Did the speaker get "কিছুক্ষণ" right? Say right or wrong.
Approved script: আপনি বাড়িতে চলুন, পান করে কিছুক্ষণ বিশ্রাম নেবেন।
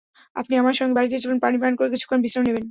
right